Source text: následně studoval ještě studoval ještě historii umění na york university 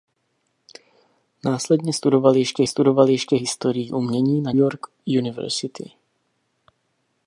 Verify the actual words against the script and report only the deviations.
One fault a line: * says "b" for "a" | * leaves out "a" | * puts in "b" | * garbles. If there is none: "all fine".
all fine